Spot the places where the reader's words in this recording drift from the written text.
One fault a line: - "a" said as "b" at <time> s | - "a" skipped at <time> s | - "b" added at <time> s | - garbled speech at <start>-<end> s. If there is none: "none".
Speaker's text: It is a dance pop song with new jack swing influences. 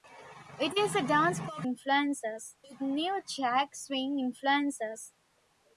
- "song" said as "influences" at 1.6 s